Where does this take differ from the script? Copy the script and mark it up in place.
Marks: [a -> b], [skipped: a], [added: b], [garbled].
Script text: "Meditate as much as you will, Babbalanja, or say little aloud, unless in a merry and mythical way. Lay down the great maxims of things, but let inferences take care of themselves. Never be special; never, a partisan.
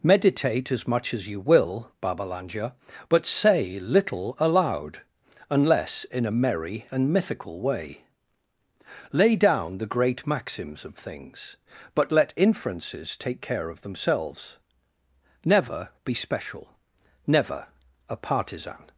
"Meditate as much as you will, Babbalanja, [or -> but] say little aloud, unless in a merry and mythical way. Lay down the great maxims of things, but let inferences take care of themselves. Never be special; never, a partisan.